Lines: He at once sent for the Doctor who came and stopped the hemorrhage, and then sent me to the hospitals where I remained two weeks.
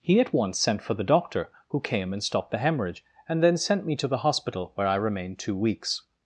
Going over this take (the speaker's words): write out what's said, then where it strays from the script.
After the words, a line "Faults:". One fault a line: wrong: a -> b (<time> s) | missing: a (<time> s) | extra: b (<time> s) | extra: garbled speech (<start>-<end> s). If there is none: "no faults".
He at once sent for the Doctor who came and stopped the hemorrhage, and then sent me to the hospital where I remained two weeks.
Faults:
wrong: hospitals -> hospital (4.2 s)